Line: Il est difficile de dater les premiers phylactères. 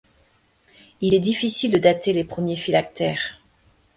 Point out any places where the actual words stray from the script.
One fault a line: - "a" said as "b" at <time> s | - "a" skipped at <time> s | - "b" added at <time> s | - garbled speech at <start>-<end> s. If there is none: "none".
none